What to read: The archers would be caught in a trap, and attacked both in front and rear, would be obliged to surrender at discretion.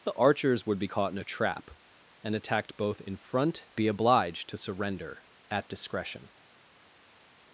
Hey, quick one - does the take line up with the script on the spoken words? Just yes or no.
no